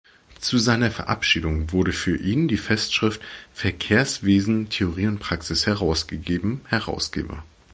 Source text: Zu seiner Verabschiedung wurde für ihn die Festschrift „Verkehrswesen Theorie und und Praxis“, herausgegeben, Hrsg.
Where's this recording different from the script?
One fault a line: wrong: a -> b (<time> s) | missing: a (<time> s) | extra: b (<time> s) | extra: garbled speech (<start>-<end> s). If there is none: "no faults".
missing: und (5.2 s)